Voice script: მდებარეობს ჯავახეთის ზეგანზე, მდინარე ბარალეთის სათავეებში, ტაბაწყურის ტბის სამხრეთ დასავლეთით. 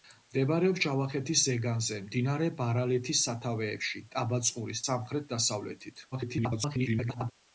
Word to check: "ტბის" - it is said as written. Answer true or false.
false